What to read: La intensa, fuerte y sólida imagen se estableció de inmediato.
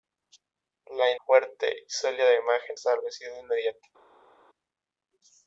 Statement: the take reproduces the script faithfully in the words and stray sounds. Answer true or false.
false